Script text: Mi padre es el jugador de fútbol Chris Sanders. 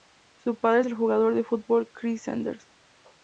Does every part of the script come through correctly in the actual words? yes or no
no